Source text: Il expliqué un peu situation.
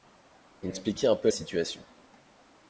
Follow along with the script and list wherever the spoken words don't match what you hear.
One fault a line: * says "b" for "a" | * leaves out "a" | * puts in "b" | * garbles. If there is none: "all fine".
all fine